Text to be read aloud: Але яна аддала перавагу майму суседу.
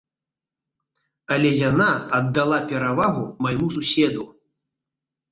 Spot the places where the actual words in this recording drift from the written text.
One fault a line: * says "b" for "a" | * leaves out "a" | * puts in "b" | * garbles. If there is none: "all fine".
all fine